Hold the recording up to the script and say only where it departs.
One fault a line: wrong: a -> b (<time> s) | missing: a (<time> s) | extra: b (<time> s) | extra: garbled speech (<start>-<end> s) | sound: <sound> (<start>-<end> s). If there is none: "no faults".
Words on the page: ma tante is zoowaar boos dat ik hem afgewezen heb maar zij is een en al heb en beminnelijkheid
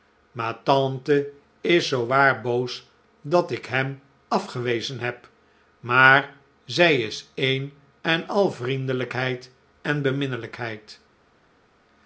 wrong: heb -> vriendelijkheid (8.5 s)